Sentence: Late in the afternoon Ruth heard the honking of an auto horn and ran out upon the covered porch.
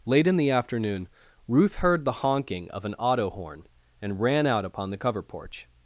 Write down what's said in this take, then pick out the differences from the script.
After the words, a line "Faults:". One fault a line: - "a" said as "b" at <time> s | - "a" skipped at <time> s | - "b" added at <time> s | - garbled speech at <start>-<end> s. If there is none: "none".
Late in the afternoon Ruth heard the honking of an auto horn and ran out upon the cover porch.
Faults:
- "covered" said as "cover" at 5.0 s